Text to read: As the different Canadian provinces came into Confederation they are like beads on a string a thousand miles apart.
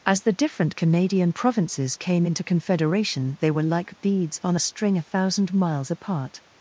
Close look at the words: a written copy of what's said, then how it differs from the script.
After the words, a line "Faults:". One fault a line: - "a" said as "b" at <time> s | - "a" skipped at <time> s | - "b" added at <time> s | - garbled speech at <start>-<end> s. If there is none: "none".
As the different Canadian provinces came into Confederation they were like beads on a string a thousand miles apart.
Faults:
- "are" said as "were" at 3.5 s